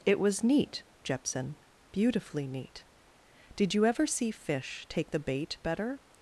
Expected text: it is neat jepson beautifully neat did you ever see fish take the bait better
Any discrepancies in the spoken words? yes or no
yes